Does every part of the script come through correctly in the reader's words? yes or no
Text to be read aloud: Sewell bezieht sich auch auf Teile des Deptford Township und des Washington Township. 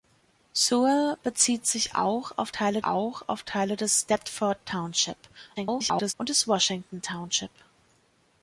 no